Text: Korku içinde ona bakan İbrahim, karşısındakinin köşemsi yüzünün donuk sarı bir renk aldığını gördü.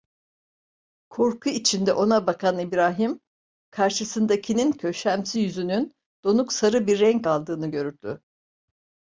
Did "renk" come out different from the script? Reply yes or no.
no